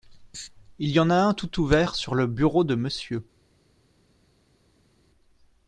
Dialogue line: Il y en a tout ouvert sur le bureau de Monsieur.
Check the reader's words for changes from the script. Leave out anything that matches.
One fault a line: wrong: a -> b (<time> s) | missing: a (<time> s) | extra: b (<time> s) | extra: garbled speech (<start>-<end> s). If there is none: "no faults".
extra: un (1.1 s)